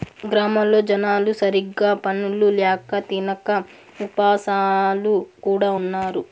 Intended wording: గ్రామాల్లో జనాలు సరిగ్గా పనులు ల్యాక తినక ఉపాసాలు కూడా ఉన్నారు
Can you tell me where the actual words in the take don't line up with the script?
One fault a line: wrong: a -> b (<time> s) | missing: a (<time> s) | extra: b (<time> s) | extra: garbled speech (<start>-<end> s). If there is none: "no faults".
no faults